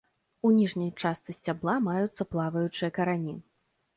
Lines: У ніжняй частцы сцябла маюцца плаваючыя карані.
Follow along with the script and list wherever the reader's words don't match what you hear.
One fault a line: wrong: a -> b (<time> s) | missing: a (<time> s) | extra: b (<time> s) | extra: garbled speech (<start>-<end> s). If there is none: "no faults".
no faults